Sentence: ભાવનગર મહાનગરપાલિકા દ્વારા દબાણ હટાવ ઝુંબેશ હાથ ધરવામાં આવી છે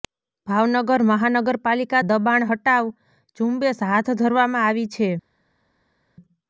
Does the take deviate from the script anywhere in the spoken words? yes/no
yes